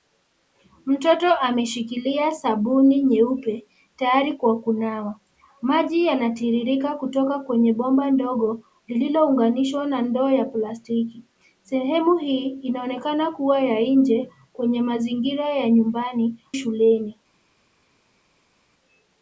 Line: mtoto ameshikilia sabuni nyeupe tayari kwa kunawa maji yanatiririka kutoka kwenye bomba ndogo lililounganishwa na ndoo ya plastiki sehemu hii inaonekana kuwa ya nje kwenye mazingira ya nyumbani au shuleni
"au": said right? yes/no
no